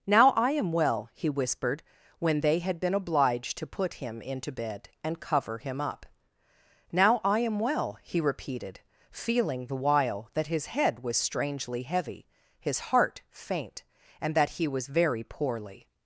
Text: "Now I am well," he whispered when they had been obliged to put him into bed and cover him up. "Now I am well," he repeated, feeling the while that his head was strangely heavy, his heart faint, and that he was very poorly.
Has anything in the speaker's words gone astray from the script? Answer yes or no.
no